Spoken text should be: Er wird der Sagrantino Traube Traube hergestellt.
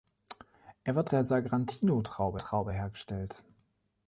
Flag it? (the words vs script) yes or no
no